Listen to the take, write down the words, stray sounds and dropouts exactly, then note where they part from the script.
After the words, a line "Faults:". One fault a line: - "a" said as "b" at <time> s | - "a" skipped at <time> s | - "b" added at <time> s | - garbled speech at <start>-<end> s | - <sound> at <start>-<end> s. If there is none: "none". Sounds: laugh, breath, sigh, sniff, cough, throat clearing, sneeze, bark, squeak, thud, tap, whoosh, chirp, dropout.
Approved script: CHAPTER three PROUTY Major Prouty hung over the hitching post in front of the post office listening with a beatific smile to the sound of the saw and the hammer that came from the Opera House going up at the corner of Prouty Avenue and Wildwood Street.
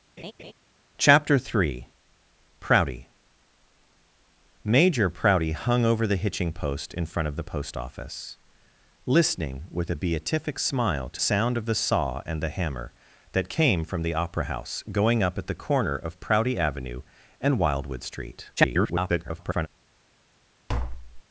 CHAPTER three PROUTY Major Prouty hung over the hitching post in front of the post office listening with a beatific smile to sound of the saw and the hammer that came from the Opera House going up at the corner of Prouty Avenue and Wildwood Street. [garbled]
Faults:
- laugh at 0.2-0.5 s
- "the" skipped at 11.2 s
- garbled speech at 18.6-19.7 s
- tap at 20.7-21.2 s